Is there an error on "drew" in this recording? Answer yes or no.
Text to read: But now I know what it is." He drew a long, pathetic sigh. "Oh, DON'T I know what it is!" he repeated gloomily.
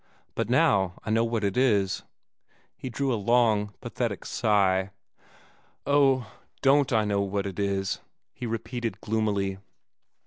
no